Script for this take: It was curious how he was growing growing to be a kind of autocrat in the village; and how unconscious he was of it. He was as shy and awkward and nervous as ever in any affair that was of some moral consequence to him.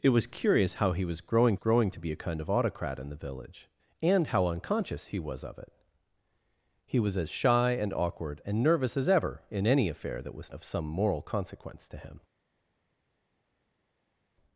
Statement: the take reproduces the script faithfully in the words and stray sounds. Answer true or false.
true